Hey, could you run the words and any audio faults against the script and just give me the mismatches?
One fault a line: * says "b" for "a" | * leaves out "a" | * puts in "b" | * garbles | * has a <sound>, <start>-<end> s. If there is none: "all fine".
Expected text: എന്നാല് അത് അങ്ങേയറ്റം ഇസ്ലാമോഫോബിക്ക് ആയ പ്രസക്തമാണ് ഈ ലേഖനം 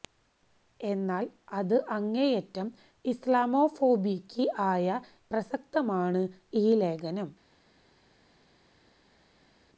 all fine